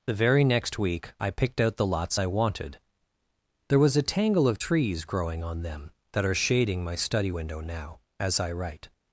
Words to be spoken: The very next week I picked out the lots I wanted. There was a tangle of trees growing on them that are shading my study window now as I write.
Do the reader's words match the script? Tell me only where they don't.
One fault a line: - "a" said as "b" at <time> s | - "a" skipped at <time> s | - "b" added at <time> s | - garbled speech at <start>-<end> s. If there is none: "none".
none